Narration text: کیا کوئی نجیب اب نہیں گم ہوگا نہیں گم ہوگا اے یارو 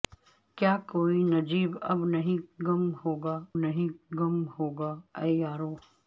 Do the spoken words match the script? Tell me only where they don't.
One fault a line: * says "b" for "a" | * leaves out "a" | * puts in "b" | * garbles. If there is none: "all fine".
all fine